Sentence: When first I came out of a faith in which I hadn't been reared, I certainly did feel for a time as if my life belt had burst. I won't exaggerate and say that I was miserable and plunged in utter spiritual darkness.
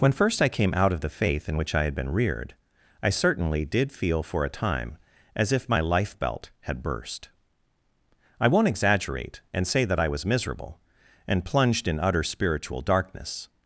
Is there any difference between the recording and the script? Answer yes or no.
yes